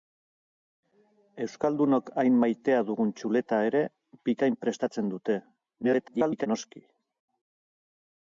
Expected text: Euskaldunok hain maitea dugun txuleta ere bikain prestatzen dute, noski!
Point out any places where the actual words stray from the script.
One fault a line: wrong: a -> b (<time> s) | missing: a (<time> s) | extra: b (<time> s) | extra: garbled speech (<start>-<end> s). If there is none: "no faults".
extra: garbled speech (5.8-6.5 s)